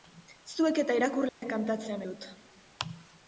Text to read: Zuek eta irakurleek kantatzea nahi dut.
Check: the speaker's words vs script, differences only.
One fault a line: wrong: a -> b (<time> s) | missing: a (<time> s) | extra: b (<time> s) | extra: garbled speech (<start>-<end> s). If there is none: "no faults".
missing: nahi (2.0 s)